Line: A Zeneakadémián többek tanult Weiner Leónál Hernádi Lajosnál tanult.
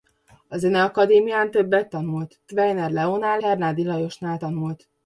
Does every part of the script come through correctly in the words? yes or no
yes